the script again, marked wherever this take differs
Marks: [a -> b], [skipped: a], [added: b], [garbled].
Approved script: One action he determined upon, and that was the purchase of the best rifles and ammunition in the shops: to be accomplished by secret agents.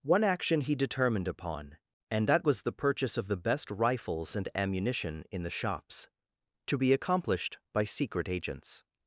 One action he determined upon, and that was the purchase of the best rifles and ammunition in the shops: to be accomplished by secret agents.